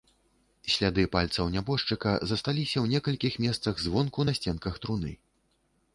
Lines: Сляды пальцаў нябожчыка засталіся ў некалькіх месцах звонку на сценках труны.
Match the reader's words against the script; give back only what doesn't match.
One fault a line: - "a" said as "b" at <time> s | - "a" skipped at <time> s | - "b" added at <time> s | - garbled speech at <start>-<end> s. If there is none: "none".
none